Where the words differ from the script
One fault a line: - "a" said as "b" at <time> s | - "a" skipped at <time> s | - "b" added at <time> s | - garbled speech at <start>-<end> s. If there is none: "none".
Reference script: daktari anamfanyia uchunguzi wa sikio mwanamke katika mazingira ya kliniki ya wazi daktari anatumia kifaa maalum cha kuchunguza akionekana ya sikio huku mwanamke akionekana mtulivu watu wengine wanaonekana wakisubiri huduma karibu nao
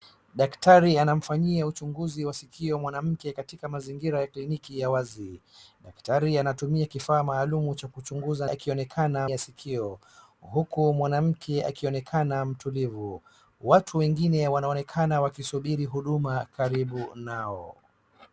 none